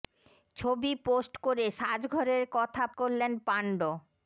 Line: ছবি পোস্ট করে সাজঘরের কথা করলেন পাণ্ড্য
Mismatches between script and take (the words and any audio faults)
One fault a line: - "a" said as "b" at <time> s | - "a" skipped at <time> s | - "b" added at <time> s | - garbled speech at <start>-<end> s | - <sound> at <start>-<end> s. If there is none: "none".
none